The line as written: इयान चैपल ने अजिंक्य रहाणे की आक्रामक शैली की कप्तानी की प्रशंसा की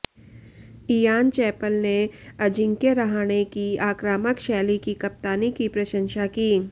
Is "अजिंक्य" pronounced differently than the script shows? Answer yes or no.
no